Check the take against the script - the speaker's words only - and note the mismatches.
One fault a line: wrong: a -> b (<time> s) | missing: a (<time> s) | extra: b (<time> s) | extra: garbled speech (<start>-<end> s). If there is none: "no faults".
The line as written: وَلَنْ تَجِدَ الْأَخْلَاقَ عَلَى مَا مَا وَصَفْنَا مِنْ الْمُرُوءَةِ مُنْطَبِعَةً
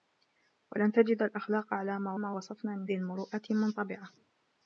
no faults